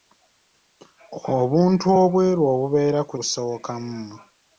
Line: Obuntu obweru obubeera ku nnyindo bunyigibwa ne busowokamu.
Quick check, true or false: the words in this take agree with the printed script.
false